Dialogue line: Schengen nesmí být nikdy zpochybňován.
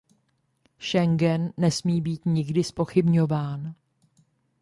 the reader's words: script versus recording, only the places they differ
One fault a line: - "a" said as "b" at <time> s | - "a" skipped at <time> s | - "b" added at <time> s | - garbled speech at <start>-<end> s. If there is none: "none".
none